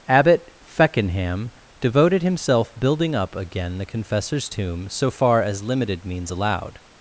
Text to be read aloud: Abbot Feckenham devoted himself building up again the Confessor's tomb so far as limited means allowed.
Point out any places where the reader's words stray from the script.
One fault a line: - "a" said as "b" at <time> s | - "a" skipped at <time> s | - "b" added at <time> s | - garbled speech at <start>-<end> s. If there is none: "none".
none